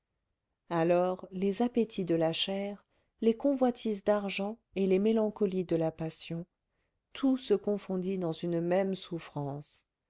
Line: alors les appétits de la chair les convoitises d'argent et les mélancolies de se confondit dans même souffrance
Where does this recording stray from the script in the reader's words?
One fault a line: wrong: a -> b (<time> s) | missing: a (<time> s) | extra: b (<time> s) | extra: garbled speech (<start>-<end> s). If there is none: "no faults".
extra: la passion tout (5.8 s)
extra: une (8.3 s)